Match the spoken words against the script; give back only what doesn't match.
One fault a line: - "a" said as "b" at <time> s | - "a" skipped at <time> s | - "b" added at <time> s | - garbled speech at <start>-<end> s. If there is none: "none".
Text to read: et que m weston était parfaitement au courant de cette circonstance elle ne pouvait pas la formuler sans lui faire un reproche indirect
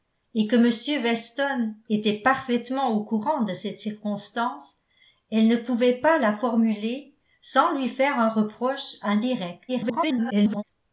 - garbled speech at 9.7-10.6 s